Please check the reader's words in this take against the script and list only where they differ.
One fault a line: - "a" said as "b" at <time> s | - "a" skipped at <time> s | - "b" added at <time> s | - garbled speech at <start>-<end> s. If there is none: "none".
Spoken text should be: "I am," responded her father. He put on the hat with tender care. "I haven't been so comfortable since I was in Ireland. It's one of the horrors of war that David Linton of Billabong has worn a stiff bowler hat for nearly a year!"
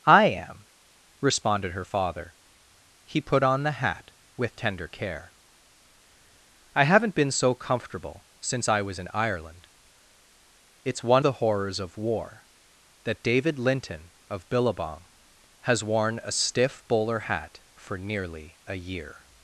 - "of" skipped at 11.2 s